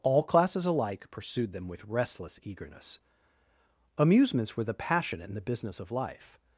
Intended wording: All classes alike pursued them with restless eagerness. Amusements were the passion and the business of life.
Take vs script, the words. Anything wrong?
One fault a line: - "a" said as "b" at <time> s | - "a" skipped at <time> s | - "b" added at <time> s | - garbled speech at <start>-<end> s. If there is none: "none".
none